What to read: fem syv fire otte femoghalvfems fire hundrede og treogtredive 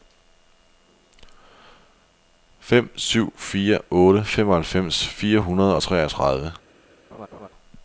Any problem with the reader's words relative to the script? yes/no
no